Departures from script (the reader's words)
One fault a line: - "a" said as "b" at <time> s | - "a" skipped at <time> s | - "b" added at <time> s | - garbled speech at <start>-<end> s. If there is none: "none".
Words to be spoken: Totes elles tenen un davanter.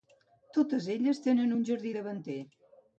- "jardí" added at 1.7 s